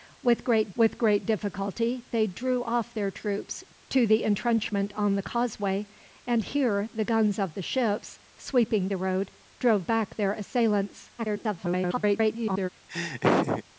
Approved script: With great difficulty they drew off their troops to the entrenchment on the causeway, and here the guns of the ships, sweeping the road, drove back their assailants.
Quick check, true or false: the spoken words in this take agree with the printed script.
false